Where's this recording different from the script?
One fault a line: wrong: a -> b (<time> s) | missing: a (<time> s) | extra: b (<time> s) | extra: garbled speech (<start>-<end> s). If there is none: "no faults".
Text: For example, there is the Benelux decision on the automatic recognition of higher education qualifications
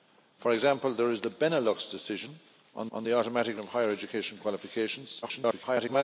extra: on (2.9 s)
missing: recognition (3.6 s)
extra: garbled speech (5.2-6.0 s)